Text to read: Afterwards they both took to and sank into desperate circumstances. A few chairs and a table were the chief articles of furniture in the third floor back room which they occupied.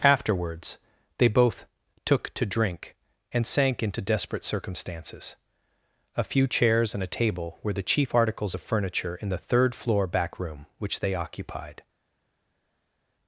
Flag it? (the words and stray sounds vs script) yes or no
yes